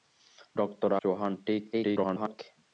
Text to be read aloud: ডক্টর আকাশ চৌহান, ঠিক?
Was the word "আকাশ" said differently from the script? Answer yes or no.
yes